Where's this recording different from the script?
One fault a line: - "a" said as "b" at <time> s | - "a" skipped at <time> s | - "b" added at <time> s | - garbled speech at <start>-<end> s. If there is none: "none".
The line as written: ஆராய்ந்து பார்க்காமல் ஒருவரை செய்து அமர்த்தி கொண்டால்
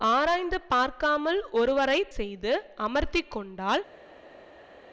none